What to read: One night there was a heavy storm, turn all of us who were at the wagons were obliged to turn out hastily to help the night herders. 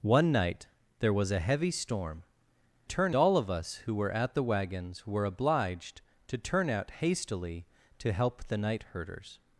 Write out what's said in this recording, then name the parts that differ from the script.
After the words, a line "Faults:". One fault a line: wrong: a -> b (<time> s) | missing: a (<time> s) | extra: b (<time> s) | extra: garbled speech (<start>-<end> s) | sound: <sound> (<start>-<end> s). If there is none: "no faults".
One night there was a heavy storm, turn all of us who were at the wagons were obliged to turn out hastily to help the night herders.
Faults:
no faults